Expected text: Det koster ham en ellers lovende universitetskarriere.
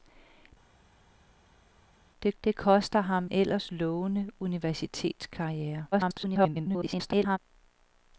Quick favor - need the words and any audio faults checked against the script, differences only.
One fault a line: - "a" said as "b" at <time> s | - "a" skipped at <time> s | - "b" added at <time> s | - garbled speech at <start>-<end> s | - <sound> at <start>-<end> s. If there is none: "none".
- "det" added at 2.4 s
- "en" skipped at 3.3 s
- garbled speech at 5.9-7.4 s